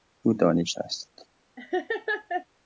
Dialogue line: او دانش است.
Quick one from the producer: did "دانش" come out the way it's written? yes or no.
yes